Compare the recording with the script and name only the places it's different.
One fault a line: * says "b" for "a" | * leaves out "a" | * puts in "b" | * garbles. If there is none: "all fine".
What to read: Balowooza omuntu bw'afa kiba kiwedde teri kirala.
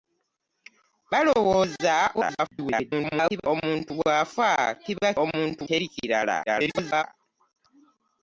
* garbles
* says "omuntu" for "kiwedde"
* garbles